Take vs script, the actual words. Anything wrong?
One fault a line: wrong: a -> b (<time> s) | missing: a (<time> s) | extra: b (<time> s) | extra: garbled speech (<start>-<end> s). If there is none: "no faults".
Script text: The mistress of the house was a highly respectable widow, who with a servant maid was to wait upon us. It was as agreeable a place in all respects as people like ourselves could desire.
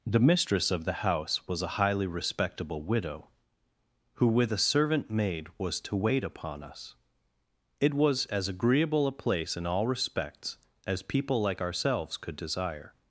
no faults